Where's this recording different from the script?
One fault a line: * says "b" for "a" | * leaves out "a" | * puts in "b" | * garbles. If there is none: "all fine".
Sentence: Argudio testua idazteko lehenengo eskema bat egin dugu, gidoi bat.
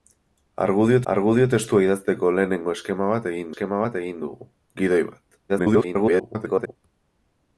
* puts in "argudio"
* puts in "eskema bat egin"
* garbles